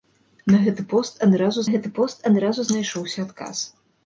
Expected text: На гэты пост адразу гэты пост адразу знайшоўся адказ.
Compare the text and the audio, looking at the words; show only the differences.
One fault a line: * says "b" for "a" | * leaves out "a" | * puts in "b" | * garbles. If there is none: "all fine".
all fine